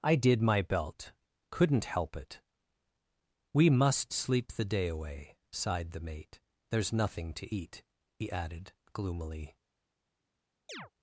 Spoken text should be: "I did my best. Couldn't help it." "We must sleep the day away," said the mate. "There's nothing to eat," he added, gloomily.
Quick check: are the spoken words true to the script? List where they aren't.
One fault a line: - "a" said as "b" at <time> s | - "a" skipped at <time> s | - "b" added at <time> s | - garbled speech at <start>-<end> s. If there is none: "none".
- "best" said as "belt" at 0.6 s
- "said" said as "sighed" at 5.5 s